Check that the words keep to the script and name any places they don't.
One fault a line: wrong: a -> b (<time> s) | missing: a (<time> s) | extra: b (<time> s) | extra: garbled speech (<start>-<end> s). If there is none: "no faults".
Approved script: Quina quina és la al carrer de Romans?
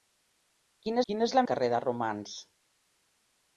no faults